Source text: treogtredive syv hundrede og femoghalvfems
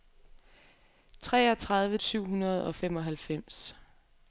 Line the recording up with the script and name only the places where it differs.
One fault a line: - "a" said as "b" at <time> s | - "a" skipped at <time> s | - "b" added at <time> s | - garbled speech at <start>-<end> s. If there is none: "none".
none